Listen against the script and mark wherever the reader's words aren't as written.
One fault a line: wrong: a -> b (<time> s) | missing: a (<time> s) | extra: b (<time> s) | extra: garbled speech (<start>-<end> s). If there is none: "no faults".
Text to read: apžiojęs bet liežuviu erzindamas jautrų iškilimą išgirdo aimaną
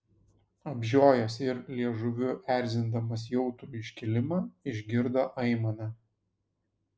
wrong: bet -> ir (1.5 s)